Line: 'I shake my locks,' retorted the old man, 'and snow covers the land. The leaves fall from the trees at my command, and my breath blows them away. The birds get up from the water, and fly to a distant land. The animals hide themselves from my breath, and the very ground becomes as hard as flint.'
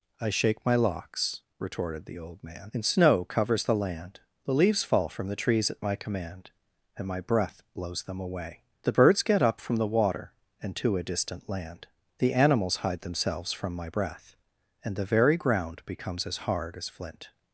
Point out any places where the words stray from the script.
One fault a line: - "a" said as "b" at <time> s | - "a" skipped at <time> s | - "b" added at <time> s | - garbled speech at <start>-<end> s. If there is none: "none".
- "fly" skipped at 10.8 s